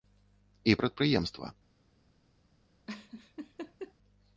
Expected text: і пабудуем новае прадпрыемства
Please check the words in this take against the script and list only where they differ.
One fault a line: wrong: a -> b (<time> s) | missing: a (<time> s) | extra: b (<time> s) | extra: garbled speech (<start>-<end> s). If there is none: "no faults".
missing: пабудуем новае (0.8 s)